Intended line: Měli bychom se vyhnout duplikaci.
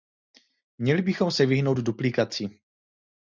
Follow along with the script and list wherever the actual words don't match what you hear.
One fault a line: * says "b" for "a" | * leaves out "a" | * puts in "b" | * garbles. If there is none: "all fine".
all fine